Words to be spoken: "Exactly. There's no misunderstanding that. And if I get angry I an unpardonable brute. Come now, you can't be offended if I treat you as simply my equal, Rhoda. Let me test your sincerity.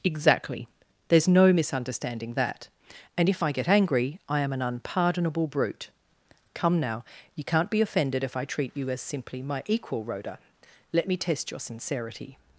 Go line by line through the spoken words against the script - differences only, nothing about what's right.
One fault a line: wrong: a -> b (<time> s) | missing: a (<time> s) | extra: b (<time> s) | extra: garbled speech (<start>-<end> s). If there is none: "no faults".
extra: am (4.4 s)